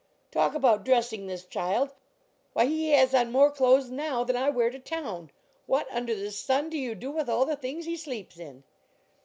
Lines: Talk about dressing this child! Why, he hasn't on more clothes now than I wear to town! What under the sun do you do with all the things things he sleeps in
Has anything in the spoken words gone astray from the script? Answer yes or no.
yes